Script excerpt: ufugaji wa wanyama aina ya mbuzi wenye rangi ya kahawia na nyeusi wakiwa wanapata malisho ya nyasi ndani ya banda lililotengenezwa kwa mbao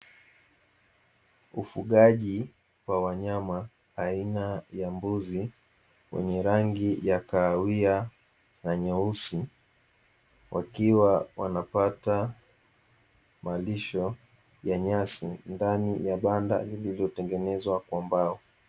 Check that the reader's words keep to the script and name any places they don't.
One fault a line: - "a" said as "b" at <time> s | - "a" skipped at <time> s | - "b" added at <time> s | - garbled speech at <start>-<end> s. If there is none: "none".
none